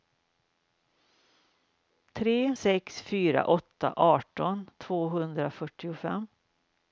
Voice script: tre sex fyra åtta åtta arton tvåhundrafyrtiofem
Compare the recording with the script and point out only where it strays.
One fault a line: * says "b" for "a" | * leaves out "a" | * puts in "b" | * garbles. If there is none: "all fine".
* leaves out "åtta"